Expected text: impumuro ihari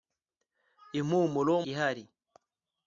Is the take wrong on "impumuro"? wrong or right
right